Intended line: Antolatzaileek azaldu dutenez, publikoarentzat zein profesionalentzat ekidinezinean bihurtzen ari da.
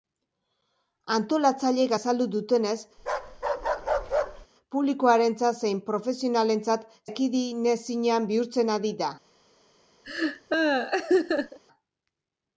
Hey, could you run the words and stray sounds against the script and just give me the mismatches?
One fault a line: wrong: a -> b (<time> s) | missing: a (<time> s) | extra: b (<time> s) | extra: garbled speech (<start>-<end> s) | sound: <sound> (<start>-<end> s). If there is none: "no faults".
sound: bark (3.0-4.5 s)
sound: laugh (10.0-11.6 s)